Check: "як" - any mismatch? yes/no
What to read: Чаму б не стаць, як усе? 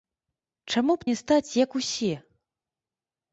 no